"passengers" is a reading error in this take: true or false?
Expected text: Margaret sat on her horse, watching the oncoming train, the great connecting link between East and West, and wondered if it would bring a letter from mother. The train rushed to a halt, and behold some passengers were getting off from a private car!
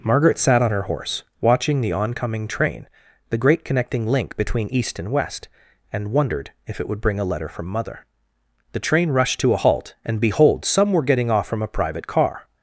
true